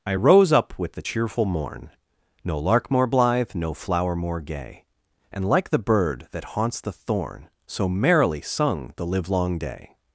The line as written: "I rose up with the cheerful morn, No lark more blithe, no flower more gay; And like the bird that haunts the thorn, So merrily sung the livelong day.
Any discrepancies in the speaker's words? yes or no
no